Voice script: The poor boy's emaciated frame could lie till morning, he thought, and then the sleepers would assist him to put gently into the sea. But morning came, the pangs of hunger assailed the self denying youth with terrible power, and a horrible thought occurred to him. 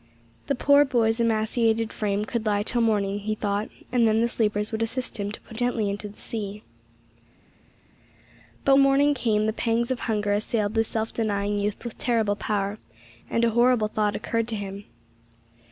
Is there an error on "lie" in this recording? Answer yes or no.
no